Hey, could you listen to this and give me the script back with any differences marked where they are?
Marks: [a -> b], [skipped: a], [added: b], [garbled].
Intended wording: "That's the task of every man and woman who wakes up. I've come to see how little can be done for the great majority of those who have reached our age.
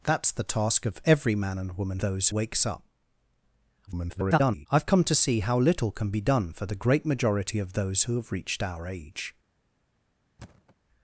"That's the task of every man and woman [who -> those] wakes up. [garbled] I've come to see how little can be done for the great majority of those who have reached our age.